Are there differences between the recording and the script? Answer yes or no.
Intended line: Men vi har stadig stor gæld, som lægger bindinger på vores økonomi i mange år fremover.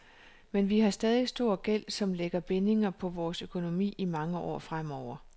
no